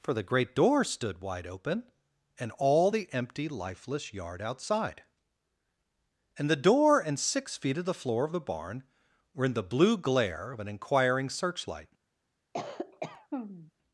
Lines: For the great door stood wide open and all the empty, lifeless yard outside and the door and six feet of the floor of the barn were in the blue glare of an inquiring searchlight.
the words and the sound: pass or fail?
fail